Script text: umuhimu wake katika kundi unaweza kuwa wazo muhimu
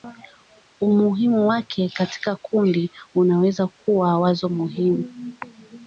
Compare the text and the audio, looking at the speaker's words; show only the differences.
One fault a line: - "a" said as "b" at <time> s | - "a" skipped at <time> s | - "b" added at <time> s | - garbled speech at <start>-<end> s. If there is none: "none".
none